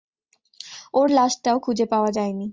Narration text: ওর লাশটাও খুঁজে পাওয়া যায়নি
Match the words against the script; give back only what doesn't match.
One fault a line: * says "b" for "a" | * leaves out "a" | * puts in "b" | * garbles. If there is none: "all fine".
all fine